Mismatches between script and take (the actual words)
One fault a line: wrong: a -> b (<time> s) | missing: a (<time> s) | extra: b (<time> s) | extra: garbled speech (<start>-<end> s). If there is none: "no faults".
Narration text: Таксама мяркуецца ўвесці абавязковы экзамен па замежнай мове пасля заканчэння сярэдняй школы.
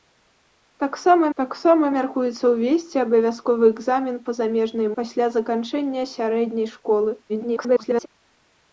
extra: таксама (1.4 s)
missing: мове (4.9 s)
extra: garbled speech (7.3-8.1 s)